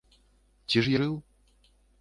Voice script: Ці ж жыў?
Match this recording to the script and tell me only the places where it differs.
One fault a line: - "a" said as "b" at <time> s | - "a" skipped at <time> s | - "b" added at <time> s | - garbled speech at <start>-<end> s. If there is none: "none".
none